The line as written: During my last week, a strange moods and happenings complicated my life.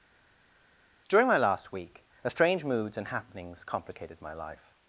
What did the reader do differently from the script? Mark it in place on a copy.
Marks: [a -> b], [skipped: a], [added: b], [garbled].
During my last week, a strange moods and happenings complicated my life.